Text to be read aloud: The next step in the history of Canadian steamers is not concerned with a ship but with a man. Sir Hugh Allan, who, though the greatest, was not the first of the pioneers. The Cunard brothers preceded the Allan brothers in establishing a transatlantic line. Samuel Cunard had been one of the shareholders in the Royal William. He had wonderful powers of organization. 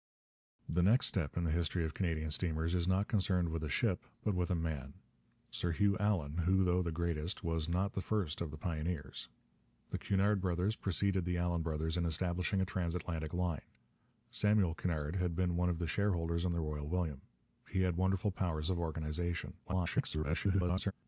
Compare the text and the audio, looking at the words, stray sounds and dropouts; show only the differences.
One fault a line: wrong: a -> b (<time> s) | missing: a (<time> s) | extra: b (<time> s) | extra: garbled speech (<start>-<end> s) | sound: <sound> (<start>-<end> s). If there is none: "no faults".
extra: garbled speech (19.6-20.9 s)